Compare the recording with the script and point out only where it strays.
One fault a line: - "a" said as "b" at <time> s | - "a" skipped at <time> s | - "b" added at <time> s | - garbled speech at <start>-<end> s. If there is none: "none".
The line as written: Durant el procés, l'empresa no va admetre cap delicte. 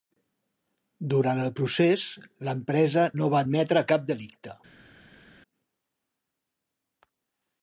none